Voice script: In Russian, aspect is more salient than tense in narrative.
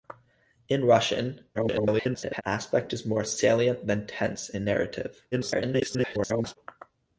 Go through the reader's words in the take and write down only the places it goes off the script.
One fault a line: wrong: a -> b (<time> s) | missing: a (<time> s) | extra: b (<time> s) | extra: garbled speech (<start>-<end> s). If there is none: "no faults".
extra: garbled speech (1.5-2.4 s)
extra: garbled speech (5.3-6.6 s)